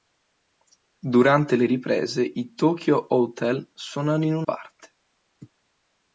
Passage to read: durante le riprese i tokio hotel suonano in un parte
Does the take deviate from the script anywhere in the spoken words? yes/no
no